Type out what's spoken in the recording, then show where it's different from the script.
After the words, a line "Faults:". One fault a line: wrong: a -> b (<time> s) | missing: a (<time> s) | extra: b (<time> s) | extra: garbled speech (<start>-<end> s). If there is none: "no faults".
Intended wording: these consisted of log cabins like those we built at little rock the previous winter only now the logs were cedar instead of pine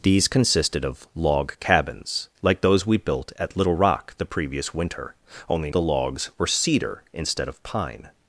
these consisted of log cabins like those we built at little rock the previous winter only the logs were cedar instead of pine
Faults:
missing: now (5.7 s)